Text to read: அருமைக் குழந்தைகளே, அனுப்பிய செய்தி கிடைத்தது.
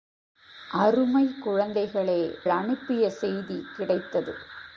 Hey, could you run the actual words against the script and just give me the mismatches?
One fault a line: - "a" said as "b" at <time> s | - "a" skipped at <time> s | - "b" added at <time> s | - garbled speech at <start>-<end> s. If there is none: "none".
none